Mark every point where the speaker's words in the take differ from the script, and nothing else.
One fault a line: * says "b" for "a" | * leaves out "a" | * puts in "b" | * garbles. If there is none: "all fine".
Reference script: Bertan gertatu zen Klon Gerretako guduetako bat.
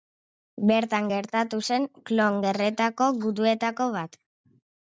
all fine